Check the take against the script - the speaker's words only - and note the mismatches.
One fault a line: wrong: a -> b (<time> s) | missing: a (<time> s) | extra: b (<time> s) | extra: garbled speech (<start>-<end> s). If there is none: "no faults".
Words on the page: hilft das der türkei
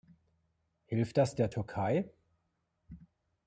no faults